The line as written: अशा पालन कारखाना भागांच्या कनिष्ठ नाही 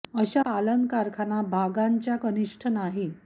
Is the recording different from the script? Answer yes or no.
no